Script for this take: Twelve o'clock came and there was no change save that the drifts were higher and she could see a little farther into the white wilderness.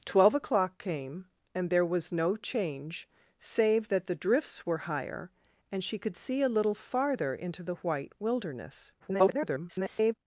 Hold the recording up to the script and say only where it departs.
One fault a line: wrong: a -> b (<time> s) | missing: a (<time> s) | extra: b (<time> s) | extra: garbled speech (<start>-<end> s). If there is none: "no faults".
extra: garbled speech (9.0-10.1 s)